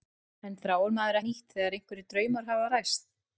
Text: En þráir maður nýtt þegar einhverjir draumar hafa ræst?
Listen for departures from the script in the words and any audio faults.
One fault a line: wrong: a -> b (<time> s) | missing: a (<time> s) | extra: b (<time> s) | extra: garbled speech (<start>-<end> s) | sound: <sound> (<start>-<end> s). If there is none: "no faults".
no faults